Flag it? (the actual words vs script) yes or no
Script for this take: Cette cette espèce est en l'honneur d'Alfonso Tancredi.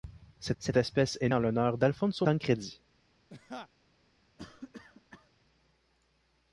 no